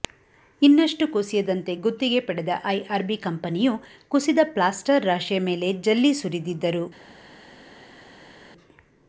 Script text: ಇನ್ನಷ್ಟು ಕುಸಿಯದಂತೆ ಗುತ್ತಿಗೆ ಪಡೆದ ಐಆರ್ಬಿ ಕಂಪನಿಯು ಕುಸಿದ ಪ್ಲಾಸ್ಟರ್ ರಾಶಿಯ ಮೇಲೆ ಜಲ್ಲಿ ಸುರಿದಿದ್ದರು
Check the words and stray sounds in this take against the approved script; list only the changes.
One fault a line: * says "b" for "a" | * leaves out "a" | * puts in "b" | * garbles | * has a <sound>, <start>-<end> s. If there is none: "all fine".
all fine